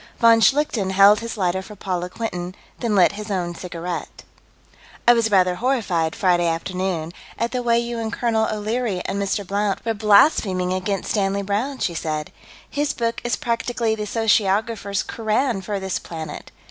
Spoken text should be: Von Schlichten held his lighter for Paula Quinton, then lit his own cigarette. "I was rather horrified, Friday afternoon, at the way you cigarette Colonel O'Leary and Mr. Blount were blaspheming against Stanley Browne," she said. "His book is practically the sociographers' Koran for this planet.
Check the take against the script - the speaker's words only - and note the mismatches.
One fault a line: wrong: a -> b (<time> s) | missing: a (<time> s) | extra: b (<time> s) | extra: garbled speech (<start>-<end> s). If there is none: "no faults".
wrong: cigarette -> and (8.0 s)